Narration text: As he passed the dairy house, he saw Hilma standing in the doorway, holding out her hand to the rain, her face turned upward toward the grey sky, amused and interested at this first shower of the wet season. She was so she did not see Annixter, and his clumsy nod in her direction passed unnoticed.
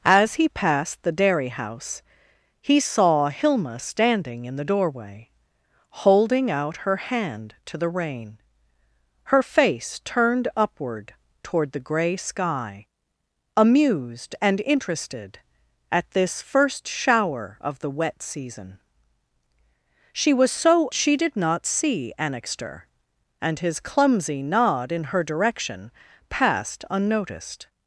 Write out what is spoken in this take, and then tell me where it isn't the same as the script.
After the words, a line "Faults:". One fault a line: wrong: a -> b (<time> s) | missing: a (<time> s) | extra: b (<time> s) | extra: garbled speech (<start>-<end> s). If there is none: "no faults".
As he passed the dairy house, he saw Hilma standing in the doorway, holding out her hand to the rain, her face turned upward toward the grey sky, amused and interested at this first shower of the wet season. She was so she did not see Annixter, and his clumsy nod in her direction passed unnoticed.
Faults:
no faults